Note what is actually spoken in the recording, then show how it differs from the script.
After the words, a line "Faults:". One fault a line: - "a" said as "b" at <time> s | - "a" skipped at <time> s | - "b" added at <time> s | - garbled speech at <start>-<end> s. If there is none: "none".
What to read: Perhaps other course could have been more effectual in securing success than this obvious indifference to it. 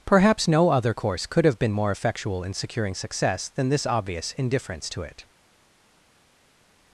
Perhaps no other course could have been more effectual in securing success than this obvious indifference to it.
Faults:
- "no" added at 0.5 s